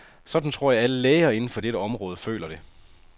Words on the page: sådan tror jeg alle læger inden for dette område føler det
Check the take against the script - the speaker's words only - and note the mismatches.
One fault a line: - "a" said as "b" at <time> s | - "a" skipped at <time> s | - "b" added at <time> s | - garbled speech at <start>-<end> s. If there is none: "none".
none